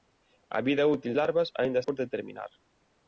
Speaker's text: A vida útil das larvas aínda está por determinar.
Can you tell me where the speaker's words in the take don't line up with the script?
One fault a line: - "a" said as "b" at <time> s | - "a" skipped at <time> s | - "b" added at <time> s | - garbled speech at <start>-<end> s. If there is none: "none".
- "das" skipped at 1.1 s
- "está" skipped at 1.8 s